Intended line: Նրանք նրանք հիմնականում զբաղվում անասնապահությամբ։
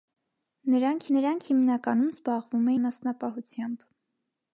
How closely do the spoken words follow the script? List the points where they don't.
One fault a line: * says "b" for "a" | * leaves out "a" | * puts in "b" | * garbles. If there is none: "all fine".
all fine